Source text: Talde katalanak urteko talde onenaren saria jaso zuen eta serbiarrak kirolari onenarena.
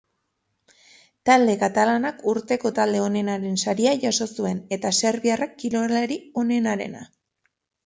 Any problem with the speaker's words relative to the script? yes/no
no